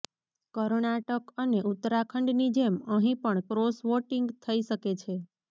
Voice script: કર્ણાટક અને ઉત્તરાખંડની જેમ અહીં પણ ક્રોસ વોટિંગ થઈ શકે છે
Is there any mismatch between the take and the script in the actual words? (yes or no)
no